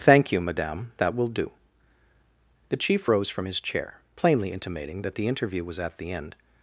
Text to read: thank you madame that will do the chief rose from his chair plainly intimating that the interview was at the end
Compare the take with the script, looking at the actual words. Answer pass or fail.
pass